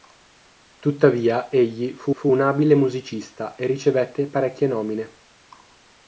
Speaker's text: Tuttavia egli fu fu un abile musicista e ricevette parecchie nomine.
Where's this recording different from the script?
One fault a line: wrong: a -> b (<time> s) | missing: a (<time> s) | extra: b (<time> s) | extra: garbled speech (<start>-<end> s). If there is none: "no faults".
no faults